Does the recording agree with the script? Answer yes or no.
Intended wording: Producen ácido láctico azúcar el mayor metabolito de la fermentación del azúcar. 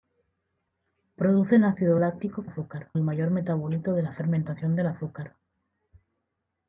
yes